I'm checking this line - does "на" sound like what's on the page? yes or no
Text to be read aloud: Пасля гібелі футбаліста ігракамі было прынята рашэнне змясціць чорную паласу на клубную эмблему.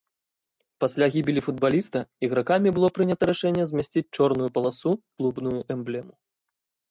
no